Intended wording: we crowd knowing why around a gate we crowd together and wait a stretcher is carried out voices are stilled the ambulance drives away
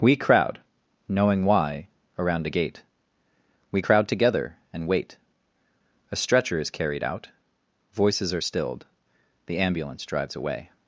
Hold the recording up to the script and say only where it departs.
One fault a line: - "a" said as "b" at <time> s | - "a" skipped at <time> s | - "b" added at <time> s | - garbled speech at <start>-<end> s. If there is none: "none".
none